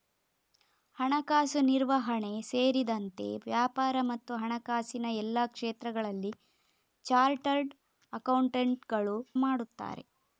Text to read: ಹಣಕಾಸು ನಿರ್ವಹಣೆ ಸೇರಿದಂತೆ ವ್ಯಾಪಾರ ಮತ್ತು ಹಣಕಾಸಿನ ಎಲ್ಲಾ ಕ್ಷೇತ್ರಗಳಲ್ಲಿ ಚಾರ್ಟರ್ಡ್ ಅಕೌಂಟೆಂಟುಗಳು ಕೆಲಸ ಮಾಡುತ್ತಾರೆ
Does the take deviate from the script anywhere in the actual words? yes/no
yes